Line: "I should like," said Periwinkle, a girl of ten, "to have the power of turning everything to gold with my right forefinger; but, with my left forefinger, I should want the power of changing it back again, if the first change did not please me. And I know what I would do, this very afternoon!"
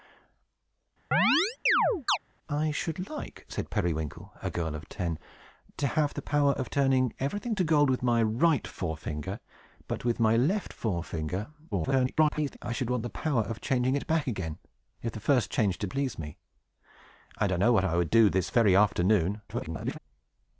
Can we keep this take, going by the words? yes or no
no